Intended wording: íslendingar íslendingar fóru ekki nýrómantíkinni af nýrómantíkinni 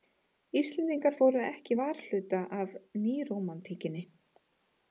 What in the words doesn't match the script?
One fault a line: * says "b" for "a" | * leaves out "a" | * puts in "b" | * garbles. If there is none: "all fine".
* leaves out "íslendingar"
* says "varhluta" for "nýrómantíkinni"